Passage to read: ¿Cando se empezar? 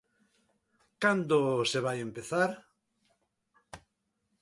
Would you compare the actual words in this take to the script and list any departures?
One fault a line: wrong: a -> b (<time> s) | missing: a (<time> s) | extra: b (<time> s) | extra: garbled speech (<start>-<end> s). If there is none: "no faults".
extra: vai (1.9 s)